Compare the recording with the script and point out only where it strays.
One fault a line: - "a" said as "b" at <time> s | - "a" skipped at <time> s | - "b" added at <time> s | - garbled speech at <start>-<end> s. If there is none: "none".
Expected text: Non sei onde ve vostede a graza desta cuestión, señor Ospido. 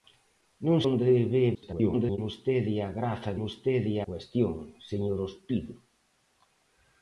- "sei" skipped at 0.8 s
- garbled speech at 1.5-2.2 s
- "desta" said as "vostede" at 3.4 s